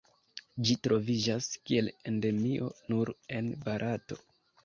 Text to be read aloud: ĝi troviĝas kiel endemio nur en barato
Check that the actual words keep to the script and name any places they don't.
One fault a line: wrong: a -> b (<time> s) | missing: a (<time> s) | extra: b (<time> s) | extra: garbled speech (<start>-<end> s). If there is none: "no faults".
no faults